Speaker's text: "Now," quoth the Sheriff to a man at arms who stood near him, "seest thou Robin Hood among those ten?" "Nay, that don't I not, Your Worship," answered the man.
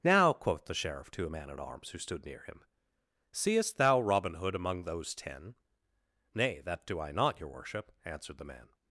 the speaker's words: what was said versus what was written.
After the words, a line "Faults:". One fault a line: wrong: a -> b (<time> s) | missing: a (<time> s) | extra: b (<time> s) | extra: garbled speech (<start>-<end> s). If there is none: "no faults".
"Now," quoth the Sheriff to a man at arms who stood near him, "seest thou Robin Hood among those ten?" "Nay, that do I not, Your Worship," answered the man.
Faults:
wrong: don't -> do (6.9 s)